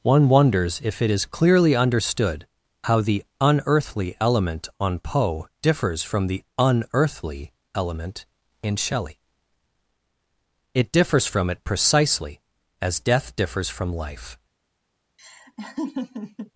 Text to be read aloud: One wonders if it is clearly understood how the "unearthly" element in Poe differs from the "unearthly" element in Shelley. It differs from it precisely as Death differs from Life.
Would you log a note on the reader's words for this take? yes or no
yes